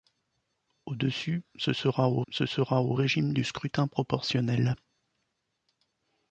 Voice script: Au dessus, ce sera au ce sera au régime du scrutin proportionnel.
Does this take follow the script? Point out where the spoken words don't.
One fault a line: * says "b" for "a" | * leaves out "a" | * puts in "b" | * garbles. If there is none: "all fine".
all fine